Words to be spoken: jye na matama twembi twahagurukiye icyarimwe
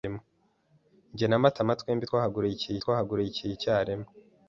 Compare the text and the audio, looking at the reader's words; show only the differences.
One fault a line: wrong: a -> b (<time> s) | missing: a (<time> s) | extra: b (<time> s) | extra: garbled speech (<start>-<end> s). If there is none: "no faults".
extra: twahagurukiye (2.8 s)